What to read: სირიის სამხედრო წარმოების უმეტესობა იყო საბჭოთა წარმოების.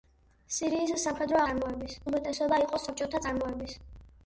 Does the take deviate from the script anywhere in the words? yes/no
no